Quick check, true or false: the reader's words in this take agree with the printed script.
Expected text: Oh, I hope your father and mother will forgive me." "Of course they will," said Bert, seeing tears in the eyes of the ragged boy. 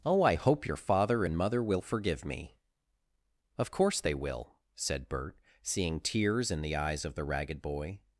true